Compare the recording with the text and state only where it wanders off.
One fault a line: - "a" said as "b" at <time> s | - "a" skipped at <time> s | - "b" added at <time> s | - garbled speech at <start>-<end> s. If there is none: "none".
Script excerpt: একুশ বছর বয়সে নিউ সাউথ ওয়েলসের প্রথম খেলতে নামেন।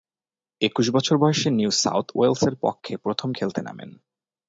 - "পক্ষে" added at 2.6 s